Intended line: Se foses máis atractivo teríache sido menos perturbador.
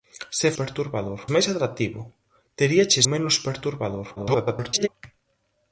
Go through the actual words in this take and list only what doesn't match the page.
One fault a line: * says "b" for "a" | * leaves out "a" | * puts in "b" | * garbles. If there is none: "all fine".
* says "perturbador" for "foses"
* leaves out "sido"
* garbles